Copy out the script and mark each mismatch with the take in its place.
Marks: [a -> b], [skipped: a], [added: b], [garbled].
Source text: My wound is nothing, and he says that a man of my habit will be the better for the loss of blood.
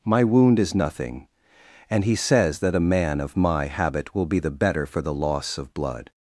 My wound is nothing, and he says that a man of my habit will be the better for the loss of blood.